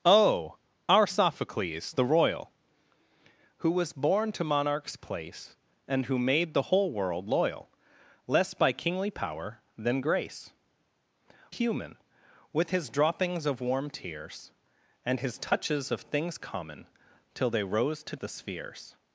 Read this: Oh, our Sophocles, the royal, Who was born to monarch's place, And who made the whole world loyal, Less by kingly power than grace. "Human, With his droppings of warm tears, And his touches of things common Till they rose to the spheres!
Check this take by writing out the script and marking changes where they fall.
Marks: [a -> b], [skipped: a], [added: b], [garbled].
Oh, our Sophocles, the royal, Who was born to monarch's place, And who made the whole world loyal, Less by kingly power than grace. "Human, With his droppings of warm tears, And his touches of things common Till they rose to the spheres!